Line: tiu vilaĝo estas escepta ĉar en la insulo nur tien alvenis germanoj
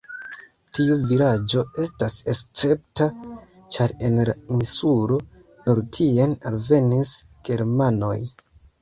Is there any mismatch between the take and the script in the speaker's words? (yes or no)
no